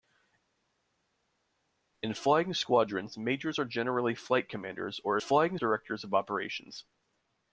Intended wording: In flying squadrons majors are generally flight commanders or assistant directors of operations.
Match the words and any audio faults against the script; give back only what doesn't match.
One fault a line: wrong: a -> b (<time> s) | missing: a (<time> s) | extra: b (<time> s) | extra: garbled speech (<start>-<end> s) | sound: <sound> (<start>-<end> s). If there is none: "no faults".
wrong: assistant -> flying (5.2 s)